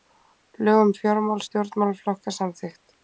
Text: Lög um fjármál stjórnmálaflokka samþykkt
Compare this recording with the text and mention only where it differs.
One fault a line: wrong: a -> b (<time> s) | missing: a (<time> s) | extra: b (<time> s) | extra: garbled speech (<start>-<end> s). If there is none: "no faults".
no faults